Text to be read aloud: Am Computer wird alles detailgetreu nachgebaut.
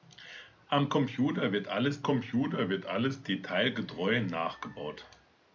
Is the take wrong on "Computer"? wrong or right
right